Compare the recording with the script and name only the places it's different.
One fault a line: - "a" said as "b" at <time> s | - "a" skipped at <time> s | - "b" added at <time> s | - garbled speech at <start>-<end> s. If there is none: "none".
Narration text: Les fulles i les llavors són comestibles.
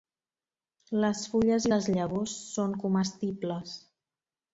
none